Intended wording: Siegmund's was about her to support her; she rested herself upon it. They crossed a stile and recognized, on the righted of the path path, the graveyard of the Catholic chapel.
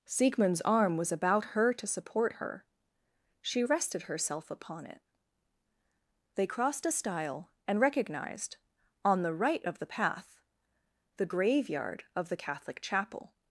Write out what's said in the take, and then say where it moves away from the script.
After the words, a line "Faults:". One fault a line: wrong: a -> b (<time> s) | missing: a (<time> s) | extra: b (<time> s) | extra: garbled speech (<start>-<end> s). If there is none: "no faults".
Siegmund's arm was about her to support her; she rested herself upon it. They crossed a stile and recognized, on the right of the path, the graveyard of the Catholic chapel.
Faults:
extra: arm (0.6 s)
wrong: righted -> right (9.3 s)
missing: path (10.4 s)